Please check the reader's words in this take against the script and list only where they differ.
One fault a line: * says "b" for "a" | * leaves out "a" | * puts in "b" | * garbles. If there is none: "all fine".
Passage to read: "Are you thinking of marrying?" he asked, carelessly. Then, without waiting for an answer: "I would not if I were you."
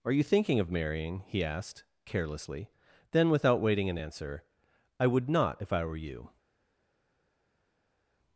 * leaves out "for"